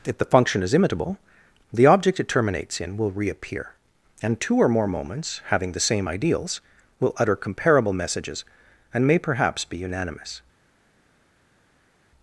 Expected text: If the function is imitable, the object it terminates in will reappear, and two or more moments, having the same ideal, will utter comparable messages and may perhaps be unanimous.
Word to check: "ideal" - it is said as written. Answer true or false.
false